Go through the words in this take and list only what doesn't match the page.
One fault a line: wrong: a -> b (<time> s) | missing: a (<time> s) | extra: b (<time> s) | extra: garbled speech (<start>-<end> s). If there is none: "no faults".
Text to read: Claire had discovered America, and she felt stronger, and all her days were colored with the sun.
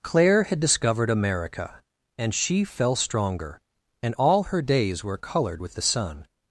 wrong: felt -> fell (2.6 s)